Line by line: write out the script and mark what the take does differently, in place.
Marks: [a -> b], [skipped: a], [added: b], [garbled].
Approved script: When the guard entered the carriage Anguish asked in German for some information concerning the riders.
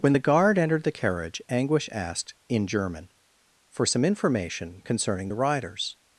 When the guard entered the carriage Anguish asked in German for some information concerning the riders.